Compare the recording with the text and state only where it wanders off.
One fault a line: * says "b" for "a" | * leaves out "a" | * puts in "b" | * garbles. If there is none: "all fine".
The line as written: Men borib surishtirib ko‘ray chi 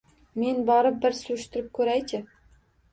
* puts in "bir"